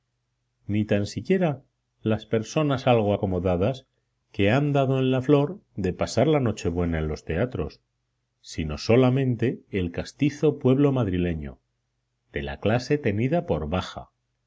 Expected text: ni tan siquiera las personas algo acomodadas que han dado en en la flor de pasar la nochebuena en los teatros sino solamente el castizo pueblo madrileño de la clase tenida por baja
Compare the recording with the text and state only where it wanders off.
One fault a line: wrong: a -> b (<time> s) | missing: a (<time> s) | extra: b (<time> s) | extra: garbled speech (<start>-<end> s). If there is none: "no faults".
missing: en (5.1 s)